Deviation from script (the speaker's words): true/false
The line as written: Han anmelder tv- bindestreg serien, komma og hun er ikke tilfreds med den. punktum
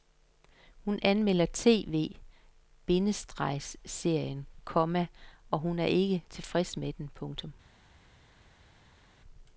true